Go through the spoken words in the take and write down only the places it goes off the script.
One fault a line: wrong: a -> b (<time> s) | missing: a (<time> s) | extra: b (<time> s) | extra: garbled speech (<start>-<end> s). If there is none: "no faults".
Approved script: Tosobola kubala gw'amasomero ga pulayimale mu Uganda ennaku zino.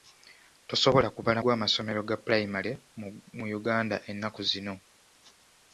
no faults